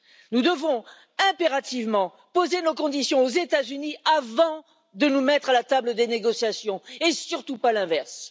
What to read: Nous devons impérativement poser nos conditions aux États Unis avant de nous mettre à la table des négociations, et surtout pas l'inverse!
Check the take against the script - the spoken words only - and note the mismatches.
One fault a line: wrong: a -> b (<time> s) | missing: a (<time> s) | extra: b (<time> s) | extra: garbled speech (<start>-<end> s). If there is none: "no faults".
no faults